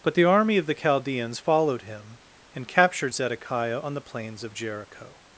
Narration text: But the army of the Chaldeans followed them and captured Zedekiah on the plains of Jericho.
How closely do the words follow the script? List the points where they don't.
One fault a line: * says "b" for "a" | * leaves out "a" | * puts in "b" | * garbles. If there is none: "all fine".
* says "him" for "them"